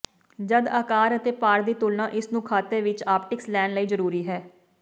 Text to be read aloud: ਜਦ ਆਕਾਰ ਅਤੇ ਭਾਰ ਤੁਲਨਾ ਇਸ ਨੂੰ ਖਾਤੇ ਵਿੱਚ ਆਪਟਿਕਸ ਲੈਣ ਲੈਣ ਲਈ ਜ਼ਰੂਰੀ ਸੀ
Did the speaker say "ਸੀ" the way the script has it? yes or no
no